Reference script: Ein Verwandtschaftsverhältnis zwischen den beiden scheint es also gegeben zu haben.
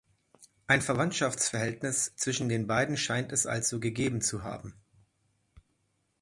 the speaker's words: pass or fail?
pass